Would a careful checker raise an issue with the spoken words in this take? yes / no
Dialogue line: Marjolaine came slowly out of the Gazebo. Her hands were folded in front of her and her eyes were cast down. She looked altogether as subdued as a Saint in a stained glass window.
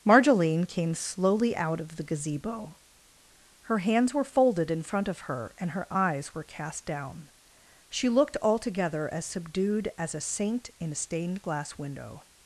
no